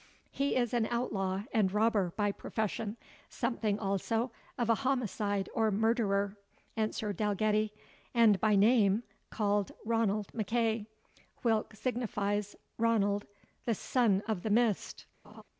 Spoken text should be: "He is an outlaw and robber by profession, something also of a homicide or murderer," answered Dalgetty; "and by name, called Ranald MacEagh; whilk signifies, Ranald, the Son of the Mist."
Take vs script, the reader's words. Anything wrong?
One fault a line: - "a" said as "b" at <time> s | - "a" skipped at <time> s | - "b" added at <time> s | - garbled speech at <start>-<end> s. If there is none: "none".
none